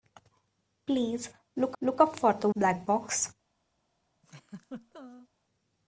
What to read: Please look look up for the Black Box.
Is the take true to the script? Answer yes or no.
yes